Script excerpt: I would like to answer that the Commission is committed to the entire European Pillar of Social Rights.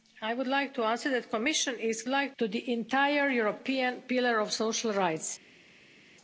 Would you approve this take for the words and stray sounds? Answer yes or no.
no